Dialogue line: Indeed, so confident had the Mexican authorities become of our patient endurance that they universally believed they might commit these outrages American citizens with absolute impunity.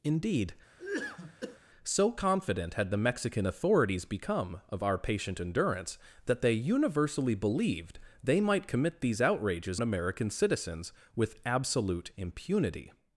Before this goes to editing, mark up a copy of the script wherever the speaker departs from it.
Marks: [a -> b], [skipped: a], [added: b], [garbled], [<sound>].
Indeed, [cough] so confident had the Mexican authorities become of our patient endurance that they universally believed they might commit these outrages American citizens with absolute impunity.